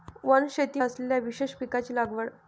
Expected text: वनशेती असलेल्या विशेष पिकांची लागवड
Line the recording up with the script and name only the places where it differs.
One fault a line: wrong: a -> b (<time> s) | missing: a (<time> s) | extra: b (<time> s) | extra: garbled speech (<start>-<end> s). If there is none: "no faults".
no faults